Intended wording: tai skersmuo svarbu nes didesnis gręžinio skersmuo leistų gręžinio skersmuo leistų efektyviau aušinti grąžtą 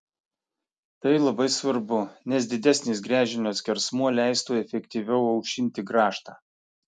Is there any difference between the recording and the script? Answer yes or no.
yes